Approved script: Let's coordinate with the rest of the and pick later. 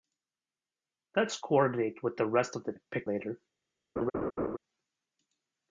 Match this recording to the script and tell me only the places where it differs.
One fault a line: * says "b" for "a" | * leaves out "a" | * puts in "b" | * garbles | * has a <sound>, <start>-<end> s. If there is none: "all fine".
* has a laugh, 4.0-4.6 s